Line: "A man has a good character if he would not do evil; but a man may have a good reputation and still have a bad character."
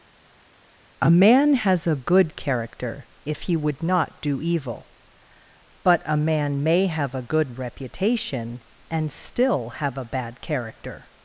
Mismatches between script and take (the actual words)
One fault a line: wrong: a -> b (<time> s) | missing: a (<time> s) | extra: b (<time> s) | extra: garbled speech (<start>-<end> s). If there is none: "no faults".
no faults